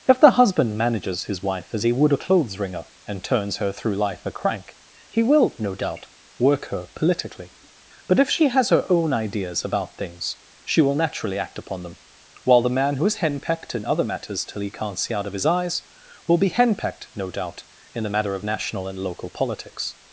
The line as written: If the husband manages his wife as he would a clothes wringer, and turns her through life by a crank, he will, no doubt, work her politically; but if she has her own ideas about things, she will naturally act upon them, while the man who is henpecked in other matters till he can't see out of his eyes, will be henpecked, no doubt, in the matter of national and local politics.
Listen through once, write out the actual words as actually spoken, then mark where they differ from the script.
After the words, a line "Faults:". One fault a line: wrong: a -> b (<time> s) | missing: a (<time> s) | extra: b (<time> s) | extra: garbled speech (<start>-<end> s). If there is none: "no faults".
If the husband manages his wife as he would a clothes wringer, and turns her through life a crank, he will, no doubt, work her politically; but if she has her own ideas about things, she will naturally act upon them, while the man who is henpecked in other matters till he can't see out of his eyes, will be henpecked, no doubt, in the matter of national and local politics.
Faults:
missing: by (4.2 s)